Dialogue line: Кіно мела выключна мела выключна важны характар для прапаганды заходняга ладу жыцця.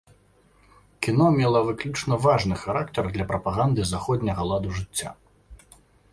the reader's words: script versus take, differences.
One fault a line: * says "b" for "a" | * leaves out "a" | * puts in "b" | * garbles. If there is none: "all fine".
* leaves out "мела выключна"